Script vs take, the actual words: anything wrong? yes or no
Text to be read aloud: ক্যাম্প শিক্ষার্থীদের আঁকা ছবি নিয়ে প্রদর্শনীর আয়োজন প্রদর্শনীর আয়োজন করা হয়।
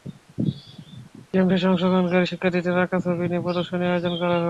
yes